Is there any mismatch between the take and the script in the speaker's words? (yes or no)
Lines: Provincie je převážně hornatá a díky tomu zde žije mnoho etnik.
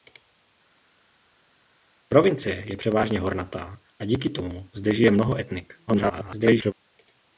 yes